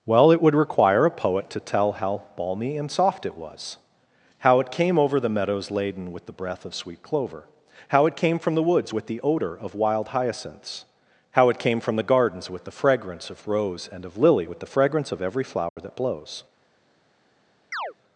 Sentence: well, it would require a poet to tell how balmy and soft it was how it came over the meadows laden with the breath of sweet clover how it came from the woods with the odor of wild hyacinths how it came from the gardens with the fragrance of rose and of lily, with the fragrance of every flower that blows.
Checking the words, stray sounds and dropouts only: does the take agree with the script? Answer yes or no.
no